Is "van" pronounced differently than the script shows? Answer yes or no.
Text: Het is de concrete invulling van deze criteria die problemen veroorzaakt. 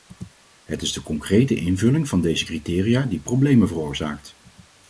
no